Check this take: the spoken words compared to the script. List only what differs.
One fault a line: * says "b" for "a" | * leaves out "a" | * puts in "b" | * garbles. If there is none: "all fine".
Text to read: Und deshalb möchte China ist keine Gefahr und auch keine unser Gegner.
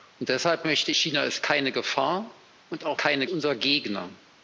all fine